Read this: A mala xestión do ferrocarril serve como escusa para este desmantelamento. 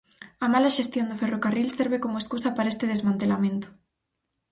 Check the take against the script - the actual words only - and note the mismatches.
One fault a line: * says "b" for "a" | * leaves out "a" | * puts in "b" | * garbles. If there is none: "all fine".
all fine